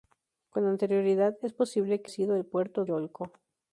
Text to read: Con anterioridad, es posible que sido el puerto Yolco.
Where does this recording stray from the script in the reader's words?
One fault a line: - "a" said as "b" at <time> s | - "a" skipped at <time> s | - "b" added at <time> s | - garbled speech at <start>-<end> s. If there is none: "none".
none